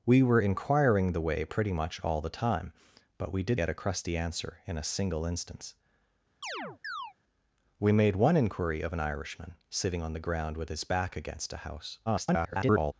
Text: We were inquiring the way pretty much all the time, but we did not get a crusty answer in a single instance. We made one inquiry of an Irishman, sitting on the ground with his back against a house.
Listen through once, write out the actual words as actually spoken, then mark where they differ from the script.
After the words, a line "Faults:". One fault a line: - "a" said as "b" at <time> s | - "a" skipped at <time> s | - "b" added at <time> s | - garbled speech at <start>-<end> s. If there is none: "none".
We were inquiring the way pretty much all the time, but we did get a crusty answer in a single instance. We made one inquiry of an Irishman, sitting on the ground with his back against a house. [garbled]
Faults:
- "not" skipped at 3.6 s
- garbled speech at 12.1-12.9 s